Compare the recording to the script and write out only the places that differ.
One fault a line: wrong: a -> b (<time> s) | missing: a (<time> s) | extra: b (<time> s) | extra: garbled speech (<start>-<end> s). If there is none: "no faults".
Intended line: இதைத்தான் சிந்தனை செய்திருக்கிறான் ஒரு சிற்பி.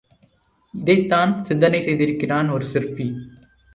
no faults